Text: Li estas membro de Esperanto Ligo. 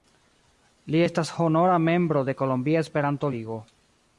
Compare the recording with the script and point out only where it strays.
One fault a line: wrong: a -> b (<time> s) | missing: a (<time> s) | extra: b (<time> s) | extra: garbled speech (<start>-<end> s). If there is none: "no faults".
extra: honora (1.5 s)
extra: Kolombia (2.4 s)